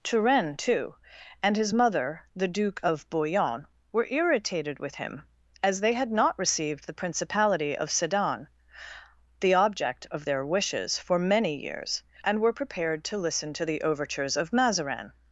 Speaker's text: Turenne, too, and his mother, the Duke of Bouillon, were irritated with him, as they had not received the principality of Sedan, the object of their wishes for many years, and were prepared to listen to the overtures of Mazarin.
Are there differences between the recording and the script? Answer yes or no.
no